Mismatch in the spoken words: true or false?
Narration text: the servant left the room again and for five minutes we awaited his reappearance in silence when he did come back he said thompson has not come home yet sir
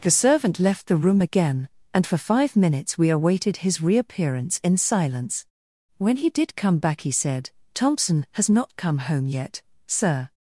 false